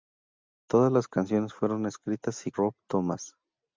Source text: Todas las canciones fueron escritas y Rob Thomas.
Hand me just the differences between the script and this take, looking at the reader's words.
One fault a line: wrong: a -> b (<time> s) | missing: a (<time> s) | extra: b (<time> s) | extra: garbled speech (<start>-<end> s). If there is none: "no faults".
no faults